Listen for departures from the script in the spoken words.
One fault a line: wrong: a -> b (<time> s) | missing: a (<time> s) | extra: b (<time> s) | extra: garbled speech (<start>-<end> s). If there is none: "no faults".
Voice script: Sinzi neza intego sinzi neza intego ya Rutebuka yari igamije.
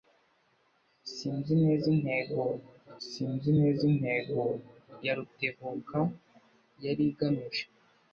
no faults